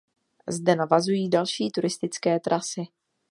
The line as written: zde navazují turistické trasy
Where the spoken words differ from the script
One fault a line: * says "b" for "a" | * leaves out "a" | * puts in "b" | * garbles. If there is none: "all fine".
* puts in "další"